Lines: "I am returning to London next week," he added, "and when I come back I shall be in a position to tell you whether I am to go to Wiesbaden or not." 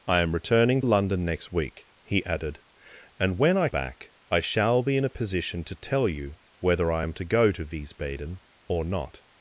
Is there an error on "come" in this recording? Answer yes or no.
yes